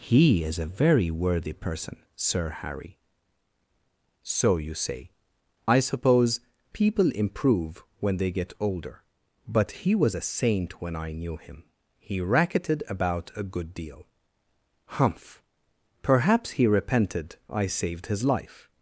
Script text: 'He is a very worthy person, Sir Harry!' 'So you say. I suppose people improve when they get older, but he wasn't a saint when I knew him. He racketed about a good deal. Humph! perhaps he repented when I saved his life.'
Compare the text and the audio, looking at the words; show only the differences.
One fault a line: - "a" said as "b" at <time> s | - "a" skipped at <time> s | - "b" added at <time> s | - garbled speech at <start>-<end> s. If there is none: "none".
- "wasn't" said as "was" at 9.9 s
- "when" skipped at 17.4 s